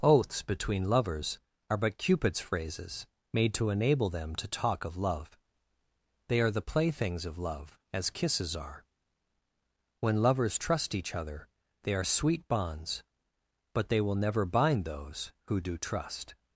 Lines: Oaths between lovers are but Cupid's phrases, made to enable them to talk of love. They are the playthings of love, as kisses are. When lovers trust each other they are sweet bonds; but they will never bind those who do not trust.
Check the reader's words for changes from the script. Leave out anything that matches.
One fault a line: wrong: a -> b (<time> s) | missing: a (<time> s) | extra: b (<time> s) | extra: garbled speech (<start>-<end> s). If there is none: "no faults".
missing: not (15.8 s)